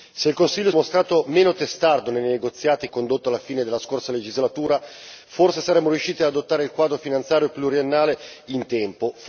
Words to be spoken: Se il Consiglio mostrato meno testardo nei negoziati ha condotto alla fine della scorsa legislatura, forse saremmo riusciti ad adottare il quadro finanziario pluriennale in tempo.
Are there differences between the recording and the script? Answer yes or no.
no